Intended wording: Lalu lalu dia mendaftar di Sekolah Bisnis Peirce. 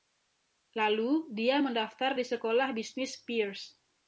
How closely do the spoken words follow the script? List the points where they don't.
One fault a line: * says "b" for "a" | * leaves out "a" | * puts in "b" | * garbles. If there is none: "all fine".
* leaves out "lalu"